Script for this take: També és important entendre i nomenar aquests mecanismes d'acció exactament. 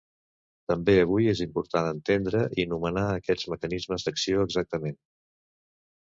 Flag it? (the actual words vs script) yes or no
yes